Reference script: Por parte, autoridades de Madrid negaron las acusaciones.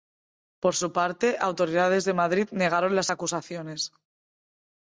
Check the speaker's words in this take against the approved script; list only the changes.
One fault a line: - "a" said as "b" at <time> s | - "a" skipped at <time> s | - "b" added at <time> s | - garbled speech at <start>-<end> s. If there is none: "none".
- "su" added at 0.7 s